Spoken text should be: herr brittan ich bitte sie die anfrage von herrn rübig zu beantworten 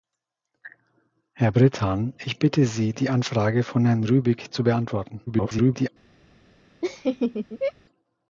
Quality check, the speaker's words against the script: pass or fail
fail